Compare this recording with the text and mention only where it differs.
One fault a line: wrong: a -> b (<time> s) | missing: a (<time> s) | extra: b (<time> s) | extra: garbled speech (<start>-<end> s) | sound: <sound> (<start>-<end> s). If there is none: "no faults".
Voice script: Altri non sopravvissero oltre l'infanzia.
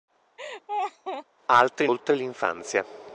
sound: laugh (0.4-1.3 s)
missing: non sopravvissero (1.9 s)